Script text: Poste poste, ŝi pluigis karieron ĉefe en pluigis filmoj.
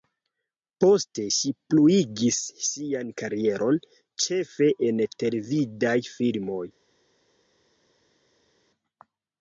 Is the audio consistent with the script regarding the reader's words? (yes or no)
no